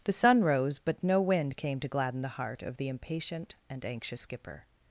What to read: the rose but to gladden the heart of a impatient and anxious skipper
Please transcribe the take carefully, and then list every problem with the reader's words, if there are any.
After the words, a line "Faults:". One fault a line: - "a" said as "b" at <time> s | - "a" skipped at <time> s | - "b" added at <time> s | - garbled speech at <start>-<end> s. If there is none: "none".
the sun rose but no wind came to gladden the heart of the impatient and anxious skipper
Faults:
- "sun" added at 0.1 s
- "no wind came" added at 1.0 s
- "a" said as "the" at 2.8 s